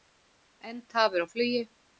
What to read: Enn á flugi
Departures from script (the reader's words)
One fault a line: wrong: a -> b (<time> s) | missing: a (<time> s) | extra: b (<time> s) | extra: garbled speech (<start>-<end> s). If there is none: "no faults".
extra: tafir (0.9 s)